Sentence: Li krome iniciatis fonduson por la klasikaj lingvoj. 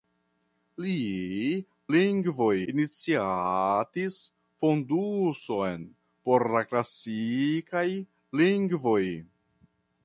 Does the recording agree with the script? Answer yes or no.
no